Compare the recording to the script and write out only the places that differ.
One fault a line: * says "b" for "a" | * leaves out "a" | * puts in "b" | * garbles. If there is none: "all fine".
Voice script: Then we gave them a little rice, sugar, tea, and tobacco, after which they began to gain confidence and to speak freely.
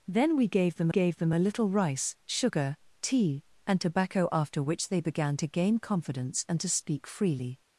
* puts in "gave them"